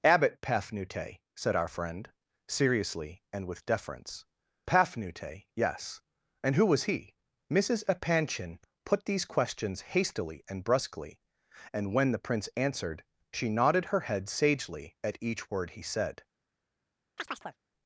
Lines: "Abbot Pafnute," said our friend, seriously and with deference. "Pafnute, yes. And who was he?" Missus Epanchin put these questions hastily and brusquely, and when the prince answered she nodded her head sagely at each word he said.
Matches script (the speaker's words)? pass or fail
pass